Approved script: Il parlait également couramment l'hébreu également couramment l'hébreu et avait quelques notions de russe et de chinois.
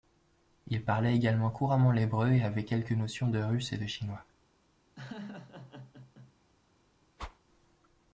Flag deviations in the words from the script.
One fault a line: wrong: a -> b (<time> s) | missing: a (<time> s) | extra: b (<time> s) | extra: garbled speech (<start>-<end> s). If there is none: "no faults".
missing: également couramment l'hébreu (2.3 s)